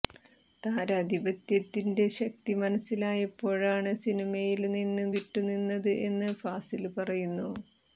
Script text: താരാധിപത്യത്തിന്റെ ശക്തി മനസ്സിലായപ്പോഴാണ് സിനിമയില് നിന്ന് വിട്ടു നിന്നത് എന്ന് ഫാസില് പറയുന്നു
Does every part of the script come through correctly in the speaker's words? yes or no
yes